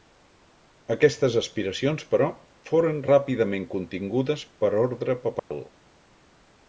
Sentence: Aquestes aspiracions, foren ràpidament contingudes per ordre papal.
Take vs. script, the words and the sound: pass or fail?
fail